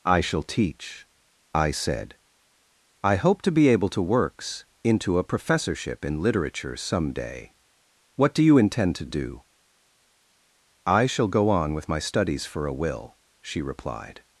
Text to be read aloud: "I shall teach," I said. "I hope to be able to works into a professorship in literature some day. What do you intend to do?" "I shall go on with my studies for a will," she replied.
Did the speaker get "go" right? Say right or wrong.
right